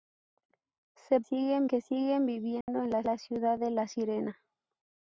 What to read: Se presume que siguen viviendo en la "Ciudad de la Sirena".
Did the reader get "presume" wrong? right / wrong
wrong